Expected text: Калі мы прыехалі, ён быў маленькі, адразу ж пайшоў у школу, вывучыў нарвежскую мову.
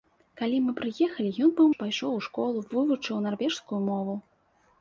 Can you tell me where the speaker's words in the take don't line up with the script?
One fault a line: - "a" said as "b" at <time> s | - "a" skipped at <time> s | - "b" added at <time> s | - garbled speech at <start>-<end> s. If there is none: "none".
- "маленькі адразу" skipped at 1.7 s